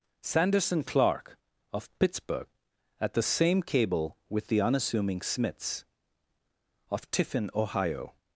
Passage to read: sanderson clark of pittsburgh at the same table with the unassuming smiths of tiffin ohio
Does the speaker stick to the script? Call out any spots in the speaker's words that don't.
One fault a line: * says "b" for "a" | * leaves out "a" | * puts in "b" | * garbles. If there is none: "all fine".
* says "cable" for "table"